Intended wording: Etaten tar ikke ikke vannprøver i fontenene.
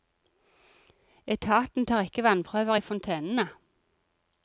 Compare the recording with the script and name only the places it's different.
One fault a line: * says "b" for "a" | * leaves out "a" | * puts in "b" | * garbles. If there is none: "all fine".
* leaves out "ikke"